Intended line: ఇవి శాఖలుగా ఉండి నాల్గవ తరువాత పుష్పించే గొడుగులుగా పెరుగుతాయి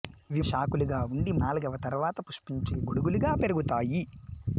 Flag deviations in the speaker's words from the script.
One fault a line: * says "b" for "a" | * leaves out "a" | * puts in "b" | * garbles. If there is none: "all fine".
all fine